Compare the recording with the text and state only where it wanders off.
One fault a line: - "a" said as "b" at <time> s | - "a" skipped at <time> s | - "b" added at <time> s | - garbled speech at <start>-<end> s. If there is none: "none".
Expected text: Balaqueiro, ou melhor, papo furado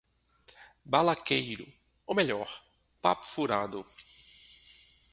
none